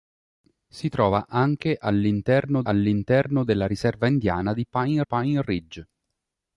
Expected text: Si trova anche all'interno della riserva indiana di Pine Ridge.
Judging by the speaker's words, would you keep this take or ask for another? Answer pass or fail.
fail